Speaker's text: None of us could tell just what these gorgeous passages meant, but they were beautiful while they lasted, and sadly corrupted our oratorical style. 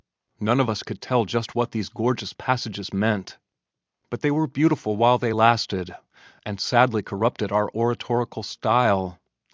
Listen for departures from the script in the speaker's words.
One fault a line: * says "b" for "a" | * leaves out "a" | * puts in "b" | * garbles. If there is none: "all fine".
all fine